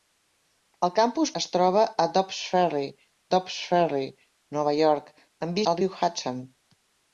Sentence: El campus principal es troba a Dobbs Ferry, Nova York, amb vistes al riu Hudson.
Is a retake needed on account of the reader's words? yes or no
yes